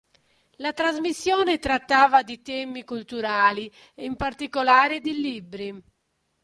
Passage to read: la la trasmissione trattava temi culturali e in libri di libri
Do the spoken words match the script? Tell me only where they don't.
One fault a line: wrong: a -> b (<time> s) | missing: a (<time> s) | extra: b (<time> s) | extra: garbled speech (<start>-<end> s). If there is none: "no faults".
missing: la (0.7 s)
extra: di (2.2 s)
wrong: libri -> particolare (4.2 s)